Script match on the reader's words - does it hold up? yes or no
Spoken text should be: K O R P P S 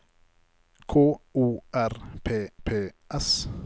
yes